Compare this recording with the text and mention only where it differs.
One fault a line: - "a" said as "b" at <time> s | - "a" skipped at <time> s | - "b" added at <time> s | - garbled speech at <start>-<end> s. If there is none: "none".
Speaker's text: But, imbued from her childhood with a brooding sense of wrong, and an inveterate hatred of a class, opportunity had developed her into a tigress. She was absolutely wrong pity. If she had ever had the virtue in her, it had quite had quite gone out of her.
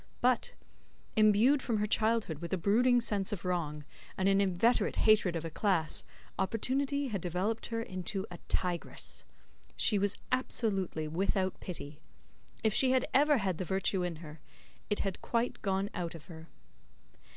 - "wrong" said as "without" at 11.1 s
- "had quite" skipped at 15.6 s